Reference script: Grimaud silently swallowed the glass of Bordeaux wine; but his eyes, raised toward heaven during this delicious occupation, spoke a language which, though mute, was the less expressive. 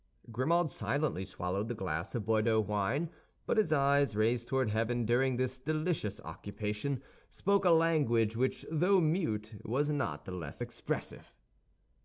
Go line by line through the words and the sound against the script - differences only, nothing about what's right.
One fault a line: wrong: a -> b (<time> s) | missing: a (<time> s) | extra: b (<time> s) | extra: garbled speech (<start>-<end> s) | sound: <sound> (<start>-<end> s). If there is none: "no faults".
extra: not (9.9 s)